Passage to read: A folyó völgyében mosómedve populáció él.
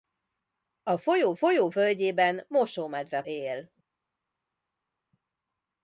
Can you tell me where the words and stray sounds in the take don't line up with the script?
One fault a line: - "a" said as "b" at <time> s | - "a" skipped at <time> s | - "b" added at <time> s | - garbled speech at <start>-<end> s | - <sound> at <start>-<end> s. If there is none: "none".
- "folyó" added at 1.3 s
- "populáció" skipped at 3.2 s